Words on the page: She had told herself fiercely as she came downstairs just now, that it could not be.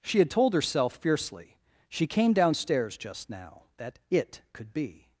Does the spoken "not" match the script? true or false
false